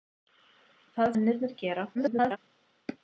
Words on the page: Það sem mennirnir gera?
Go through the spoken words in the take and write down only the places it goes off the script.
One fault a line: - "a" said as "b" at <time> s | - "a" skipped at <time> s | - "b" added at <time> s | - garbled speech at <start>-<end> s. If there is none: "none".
- "sem" skipped at 1.1 s
- garbled speech at 1.9-2.4 s